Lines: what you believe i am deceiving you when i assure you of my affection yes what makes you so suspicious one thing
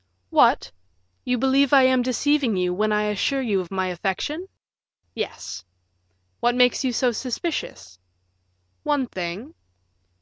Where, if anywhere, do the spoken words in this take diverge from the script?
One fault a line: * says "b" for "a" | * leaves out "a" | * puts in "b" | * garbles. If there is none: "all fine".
all fine